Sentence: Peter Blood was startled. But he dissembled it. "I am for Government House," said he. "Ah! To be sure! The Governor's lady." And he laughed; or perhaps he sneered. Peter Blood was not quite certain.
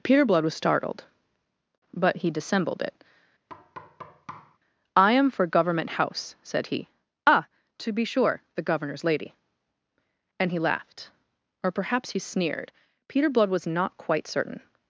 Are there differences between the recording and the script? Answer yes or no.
no